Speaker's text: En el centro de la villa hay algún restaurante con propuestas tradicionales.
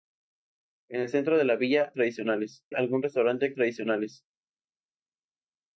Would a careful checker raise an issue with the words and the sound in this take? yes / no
yes